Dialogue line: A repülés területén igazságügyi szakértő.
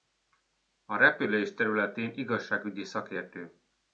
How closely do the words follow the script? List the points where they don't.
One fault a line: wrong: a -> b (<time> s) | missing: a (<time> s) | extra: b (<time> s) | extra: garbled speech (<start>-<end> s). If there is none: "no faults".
no faults